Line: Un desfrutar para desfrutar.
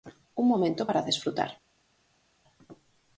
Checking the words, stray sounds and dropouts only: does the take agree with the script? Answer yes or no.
no